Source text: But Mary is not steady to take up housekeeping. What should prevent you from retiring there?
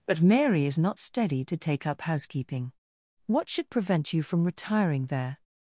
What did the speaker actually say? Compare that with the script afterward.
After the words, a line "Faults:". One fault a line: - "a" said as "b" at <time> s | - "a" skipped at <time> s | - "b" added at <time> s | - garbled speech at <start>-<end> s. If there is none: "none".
But Mary is not steady to take up housekeeping. What should prevent you from retiring there?
Faults:
none